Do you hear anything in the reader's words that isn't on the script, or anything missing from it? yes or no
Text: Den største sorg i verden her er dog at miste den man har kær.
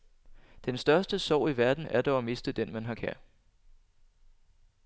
yes